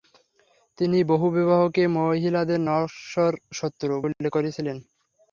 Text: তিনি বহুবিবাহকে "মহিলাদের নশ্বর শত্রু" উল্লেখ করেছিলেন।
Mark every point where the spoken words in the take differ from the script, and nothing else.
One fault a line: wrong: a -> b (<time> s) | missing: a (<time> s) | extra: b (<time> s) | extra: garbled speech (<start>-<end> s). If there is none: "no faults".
no faults